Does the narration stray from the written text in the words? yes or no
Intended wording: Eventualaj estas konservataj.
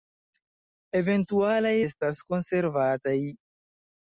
no